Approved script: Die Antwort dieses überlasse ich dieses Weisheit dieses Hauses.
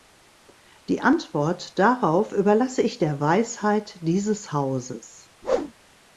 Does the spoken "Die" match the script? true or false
true